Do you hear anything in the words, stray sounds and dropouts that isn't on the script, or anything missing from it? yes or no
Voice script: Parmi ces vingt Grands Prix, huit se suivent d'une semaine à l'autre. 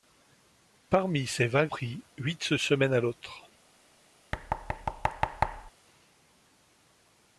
yes